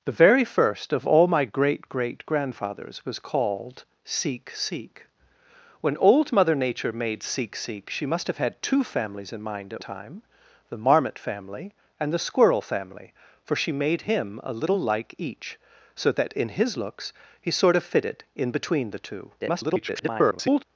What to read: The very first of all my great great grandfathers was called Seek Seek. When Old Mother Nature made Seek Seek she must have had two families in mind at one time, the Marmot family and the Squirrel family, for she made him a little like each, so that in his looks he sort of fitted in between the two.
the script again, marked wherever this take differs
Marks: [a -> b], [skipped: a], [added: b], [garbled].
The very first of all my great great grandfathers was called Seek Seek. When Old Mother Nature made Seek Seek she must have had two families in mind at [skipped: one] time, the Marmot family and the Squirrel family, for she made him a little like each, so that in his looks he sort of fitted in between the two. [garbled]